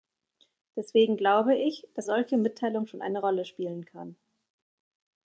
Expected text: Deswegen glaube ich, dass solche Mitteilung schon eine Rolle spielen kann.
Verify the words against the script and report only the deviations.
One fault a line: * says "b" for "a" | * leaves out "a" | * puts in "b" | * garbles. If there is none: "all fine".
all fine